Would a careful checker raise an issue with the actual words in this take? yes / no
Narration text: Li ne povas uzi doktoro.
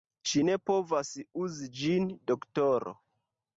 yes